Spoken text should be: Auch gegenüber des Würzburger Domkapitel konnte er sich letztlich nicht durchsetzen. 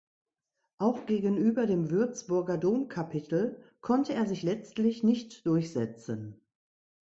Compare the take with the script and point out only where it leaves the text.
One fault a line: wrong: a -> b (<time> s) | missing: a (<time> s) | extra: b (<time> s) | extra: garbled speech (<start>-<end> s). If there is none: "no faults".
wrong: des -> dem (1.7 s)